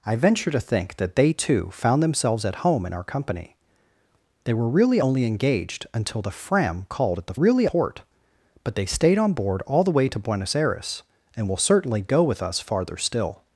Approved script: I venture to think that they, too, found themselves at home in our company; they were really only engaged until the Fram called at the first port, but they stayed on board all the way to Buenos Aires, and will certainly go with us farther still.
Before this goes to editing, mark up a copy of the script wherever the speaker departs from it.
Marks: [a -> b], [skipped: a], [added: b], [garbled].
I venture to think that they, too, found themselves at home in our company; they were really only engaged until the Fram called at the [first -> really] port, but they stayed on board all the way to Buenos Aires, and will certainly go with us farther still.